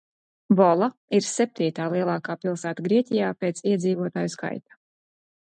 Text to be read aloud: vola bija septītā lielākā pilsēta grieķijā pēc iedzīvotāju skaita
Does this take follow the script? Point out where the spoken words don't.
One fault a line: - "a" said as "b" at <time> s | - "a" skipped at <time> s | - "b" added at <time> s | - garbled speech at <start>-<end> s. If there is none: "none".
- "bija" said as "ir" at 1.2 s